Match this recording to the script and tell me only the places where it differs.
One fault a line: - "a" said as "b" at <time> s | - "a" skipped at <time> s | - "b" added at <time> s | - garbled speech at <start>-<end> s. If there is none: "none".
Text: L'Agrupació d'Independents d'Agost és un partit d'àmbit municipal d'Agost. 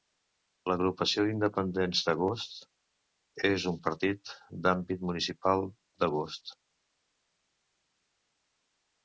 none